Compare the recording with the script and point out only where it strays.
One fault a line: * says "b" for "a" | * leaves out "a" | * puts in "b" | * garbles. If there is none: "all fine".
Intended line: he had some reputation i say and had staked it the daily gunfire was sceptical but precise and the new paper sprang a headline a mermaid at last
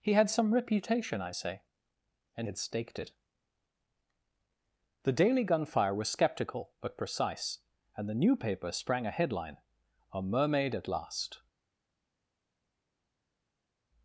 all fine